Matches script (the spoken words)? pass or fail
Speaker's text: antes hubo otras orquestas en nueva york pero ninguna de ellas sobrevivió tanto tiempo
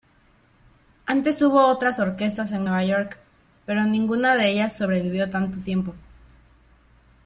pass